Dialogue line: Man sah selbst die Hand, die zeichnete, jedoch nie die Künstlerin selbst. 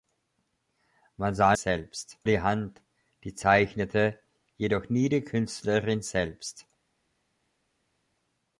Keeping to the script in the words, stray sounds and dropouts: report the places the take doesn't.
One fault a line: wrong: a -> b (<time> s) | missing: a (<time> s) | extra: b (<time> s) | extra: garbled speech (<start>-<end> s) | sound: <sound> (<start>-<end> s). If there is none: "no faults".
no faults